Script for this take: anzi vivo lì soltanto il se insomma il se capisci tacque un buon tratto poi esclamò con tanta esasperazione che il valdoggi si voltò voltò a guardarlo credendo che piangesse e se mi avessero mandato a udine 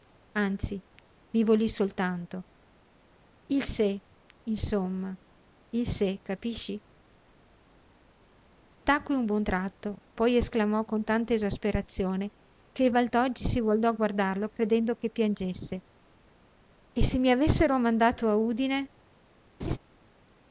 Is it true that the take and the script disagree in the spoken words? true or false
true